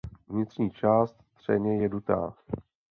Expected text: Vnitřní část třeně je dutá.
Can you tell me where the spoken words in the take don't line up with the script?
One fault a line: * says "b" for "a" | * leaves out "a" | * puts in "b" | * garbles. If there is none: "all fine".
all fine